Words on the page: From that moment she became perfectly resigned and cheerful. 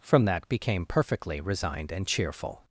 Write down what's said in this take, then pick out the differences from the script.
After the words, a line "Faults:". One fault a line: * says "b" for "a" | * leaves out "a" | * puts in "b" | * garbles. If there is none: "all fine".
From that became perfectly resigned and cheerful.
Faults:
* leaves out "moment she"